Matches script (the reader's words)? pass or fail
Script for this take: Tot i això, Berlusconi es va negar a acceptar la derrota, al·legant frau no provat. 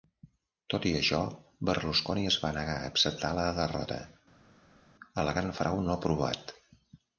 pass